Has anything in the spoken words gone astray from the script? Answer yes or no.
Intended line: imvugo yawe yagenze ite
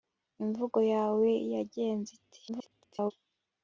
yes